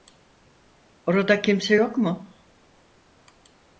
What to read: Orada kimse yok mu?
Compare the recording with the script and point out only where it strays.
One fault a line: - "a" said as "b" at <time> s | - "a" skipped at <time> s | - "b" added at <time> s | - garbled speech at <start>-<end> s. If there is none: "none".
none